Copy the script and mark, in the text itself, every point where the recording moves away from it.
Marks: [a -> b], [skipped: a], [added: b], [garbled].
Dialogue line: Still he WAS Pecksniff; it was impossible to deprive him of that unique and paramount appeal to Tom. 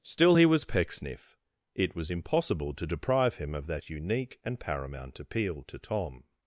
Still he WAS Pecksniff; it was impossible to deprive him of that unique and paramount appeal to Tom.